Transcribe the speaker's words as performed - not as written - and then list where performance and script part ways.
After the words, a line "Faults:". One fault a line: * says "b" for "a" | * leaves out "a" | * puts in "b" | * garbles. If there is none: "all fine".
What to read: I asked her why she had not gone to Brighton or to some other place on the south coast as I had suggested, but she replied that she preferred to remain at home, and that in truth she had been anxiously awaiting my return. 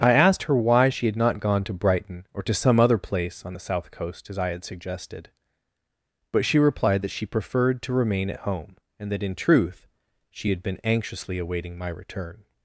I asked her why she had not gone to Brighton or to some other place on the south coast as I had suggested, but she replied that she preferred to remain at home, and that in truth she had been anxiously awaiting my return.
Faults:
all fine